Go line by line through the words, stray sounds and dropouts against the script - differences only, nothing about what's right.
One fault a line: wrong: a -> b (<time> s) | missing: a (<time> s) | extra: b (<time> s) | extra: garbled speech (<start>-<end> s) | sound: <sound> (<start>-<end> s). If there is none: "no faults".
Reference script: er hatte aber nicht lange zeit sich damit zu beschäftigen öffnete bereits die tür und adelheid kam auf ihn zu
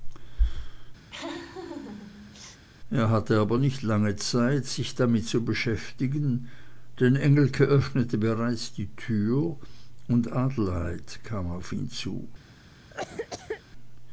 sound: laugh (1.1-2.6 s)
extra: denn engelke (7.0 s)
sound: cough (12.9-13.6 s)